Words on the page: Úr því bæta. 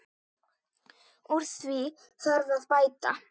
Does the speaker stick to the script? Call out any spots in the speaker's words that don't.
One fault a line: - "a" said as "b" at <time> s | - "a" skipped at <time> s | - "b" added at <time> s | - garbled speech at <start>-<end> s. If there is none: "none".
- "þarf að" added at 2.3 s